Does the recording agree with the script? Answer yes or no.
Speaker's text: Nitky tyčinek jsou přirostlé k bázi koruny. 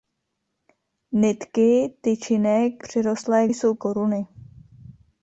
no